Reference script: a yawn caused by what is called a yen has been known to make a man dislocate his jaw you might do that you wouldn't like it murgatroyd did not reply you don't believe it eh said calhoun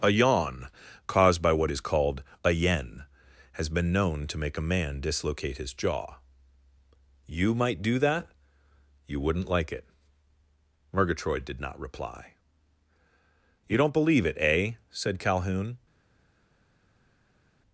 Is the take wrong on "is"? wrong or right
right